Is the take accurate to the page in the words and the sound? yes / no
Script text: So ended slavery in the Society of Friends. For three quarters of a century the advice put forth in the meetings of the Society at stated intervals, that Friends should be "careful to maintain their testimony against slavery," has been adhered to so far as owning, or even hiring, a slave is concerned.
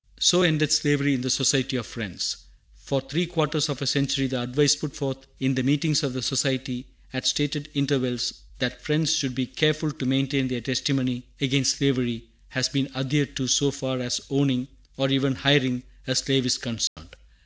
no